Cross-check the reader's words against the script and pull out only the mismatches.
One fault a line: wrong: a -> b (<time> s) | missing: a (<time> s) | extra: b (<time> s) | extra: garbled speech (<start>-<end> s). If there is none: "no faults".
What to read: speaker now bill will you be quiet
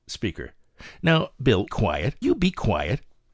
wrong: will -> quiet (1.6 s)